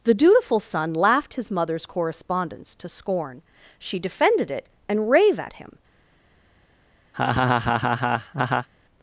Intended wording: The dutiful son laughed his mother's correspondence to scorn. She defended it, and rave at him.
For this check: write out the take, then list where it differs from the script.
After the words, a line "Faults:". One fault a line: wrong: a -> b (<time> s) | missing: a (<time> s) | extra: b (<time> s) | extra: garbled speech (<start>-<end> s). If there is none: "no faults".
The dutiful son laughed his mother's correspondence to scorn. She defended it, and rave at him.
Faults:
no faults